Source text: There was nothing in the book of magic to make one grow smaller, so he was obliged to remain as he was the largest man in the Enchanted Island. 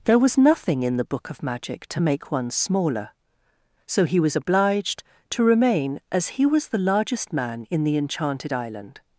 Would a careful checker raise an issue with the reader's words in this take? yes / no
yes